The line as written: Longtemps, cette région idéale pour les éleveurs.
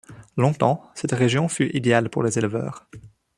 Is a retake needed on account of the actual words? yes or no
yes